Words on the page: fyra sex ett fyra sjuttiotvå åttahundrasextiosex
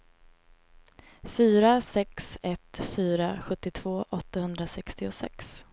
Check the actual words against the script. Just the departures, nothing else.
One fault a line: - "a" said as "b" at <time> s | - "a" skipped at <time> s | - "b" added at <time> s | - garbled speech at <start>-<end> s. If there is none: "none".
none